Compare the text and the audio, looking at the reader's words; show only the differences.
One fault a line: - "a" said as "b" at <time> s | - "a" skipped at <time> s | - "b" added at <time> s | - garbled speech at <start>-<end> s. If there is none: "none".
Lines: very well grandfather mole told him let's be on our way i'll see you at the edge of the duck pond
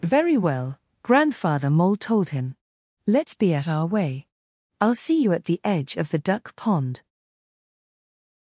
- "on" said as "at" at 3.5 s